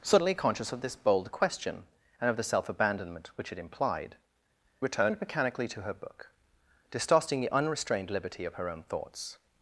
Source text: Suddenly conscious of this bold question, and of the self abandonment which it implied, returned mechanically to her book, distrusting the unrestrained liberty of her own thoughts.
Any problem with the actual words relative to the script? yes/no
no